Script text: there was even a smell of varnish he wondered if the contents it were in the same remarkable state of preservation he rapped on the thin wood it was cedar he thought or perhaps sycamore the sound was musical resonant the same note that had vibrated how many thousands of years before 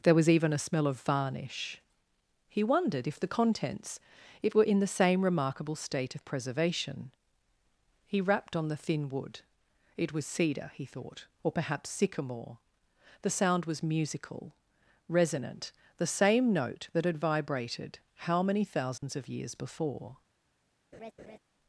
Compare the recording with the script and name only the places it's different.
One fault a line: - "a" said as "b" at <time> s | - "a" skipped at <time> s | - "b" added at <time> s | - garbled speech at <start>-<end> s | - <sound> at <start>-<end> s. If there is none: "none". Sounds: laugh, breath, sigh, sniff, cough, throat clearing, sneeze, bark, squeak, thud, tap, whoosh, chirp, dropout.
- dropout at 19.0-19.0 s
- laugh at 20.9-21.4 s